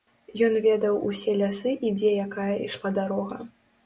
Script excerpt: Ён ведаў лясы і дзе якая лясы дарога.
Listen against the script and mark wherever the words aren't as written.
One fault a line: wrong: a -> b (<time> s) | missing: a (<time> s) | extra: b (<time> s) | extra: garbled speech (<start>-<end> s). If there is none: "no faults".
extra: усе (1.1 s)
wrong: лясы -> ішла (2.7 s)